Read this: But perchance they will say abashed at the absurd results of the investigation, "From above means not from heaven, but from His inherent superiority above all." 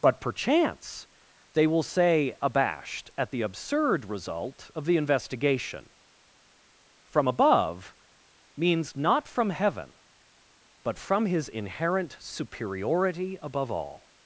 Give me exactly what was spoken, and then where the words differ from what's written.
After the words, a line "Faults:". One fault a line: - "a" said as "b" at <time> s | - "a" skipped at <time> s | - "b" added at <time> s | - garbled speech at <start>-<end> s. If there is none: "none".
But perchance they will say abashed at the absurd result of the investigation, "From above means not from heaven, but from His inherent superiority above all."
Faults:
- "results" said as "result" at 4.0 s